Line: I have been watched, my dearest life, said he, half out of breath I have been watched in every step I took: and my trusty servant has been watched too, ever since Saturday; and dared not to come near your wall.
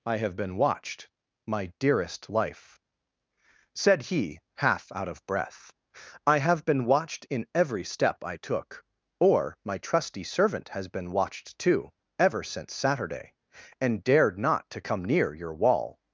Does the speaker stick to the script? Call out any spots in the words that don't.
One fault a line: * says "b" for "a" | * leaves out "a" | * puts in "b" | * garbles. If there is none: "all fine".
* says "or" for "and"